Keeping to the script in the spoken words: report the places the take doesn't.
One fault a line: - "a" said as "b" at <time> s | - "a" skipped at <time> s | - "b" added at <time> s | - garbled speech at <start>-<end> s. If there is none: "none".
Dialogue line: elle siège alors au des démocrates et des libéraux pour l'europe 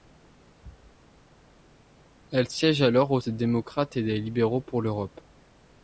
none